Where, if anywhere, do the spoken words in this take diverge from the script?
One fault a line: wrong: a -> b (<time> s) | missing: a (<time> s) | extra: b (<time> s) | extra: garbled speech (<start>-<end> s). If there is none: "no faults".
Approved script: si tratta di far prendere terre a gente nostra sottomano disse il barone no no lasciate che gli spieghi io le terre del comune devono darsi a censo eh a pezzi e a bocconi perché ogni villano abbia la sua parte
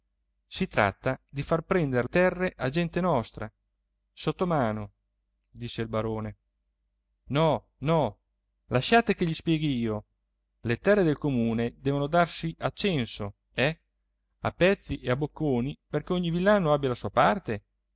no faults